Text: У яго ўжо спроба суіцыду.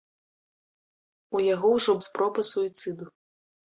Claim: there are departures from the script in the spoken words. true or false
false